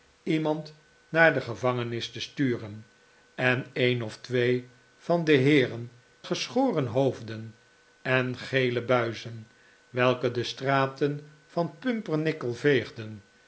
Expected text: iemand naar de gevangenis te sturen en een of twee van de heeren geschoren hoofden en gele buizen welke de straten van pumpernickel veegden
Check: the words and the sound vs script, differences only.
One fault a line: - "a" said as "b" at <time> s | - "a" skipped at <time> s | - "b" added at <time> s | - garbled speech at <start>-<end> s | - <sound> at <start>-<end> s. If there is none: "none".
none